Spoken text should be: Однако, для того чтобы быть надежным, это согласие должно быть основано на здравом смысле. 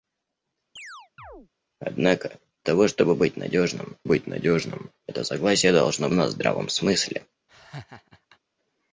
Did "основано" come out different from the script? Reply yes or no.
yes